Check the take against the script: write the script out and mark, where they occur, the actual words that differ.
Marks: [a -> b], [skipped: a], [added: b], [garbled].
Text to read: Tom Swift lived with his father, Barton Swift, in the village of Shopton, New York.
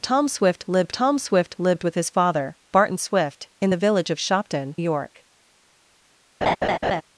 Tom Swift lived [added: tom Swift lived] with his father, Barton Swift, in the village of Shopton, [skipped: New] York.